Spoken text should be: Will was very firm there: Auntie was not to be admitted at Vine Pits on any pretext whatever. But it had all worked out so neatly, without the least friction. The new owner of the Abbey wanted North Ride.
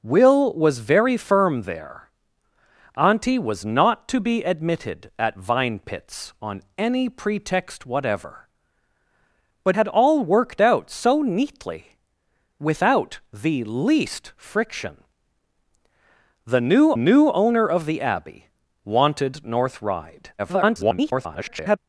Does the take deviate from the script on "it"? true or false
true